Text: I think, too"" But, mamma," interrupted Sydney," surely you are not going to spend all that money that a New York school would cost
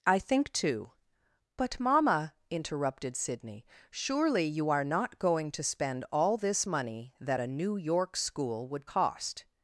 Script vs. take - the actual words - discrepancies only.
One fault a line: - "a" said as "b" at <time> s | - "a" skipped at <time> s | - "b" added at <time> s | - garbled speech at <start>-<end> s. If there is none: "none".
- "that" said as "this" at 6.4 s